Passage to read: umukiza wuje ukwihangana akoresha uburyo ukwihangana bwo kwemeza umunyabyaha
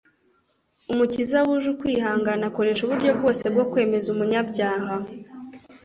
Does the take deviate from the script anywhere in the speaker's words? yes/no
yes